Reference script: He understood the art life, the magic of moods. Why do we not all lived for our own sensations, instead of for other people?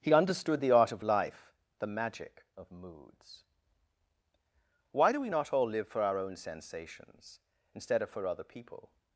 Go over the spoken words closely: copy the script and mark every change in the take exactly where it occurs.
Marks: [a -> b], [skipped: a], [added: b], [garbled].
He understood the art [added: of] life, the magic of moods. Why do we not all [lived -> live] for our own sensations, instead of for other people?